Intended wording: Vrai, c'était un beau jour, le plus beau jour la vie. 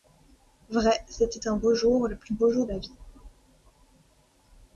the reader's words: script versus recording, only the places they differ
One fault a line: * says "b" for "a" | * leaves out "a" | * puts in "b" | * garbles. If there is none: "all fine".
all fine